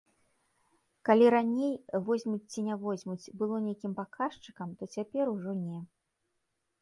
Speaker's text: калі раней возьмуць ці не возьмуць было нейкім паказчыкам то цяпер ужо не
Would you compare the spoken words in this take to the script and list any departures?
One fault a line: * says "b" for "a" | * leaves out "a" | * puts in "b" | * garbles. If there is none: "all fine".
all fine